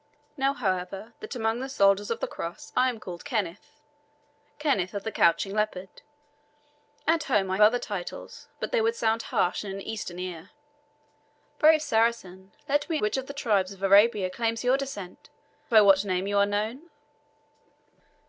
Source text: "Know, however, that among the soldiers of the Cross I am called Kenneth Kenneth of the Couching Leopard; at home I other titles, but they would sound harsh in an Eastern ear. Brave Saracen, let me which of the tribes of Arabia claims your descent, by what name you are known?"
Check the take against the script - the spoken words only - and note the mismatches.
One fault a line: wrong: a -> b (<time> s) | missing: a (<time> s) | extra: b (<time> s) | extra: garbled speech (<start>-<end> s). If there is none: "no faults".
no faults